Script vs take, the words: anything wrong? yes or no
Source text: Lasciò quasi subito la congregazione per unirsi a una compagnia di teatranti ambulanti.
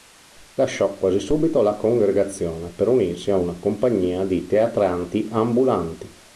no